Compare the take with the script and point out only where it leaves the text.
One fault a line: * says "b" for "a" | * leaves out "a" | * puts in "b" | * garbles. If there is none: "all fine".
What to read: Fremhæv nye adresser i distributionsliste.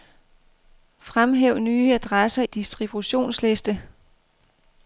* leaves out "i"